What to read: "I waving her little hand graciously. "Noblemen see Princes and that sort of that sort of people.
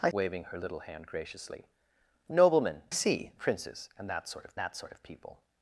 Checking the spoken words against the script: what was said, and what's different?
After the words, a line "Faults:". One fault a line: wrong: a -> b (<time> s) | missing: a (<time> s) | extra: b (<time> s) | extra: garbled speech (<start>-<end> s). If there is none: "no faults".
"I waving her little hand graciously. "Noblemen see Princes and that sort of that sort of people.
Faults:
no faults